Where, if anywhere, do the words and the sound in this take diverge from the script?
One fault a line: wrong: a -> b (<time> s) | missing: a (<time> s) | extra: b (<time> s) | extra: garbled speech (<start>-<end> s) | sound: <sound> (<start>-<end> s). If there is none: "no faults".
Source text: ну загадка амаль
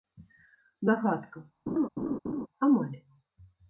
sound: laugh (1.7-2.5 s)